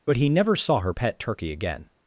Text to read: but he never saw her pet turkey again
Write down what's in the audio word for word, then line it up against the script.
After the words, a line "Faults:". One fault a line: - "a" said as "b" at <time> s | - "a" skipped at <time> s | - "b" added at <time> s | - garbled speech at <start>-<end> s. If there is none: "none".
but he never saw her pet turkey again
Faults:
none